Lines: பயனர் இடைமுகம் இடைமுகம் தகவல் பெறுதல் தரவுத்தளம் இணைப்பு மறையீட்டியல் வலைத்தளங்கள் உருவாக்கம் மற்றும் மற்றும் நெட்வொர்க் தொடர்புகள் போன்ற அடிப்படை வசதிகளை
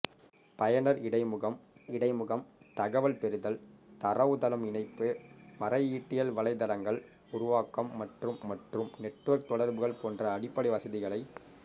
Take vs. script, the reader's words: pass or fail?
pass